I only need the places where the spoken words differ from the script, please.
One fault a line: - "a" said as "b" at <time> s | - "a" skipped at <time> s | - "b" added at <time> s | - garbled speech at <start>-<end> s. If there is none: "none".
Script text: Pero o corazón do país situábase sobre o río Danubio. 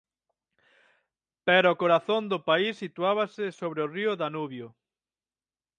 none